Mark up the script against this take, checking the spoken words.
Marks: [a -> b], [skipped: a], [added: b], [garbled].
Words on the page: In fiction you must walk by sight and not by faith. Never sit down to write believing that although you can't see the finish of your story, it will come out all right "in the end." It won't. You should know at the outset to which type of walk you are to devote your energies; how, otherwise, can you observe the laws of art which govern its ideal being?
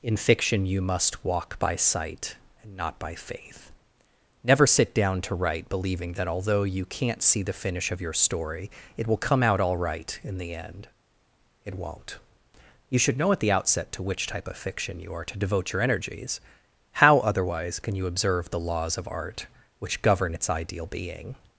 In fiction you must walk by sight and not by faith. Never sit down to write believing that although you can't see the finish of your story, it will come out all right "in the end." It won't. You should know at the outset to which type of [walk -> fiction] you are to devote your energies; how, otherwise, can you observe the laws of art which govern its ideal being?